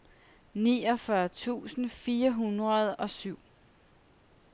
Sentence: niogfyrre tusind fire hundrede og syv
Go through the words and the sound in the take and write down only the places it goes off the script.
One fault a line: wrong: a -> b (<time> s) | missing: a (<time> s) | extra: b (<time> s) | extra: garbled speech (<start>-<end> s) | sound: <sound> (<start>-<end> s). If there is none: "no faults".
no faults